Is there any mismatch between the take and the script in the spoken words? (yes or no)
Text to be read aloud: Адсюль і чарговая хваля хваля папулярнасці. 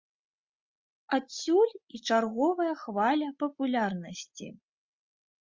yes